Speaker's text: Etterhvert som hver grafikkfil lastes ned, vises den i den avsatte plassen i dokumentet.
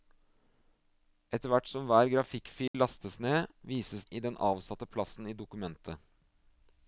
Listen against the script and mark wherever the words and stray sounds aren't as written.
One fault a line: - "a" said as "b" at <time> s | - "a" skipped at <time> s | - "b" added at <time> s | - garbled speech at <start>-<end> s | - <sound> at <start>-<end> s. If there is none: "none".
- dropout at 2.7-2.7 s
- "den" skipped at 4.1 s